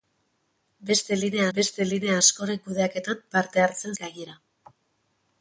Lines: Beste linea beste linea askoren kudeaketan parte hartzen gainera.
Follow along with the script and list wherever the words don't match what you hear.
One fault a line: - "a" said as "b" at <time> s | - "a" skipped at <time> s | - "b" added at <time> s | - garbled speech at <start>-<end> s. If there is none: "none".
none